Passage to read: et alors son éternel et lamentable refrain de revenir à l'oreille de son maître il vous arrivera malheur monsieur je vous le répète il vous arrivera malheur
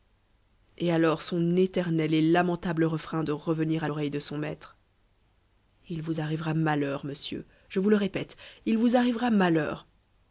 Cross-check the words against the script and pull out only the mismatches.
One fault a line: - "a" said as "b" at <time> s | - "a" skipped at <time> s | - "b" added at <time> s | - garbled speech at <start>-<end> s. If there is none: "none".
none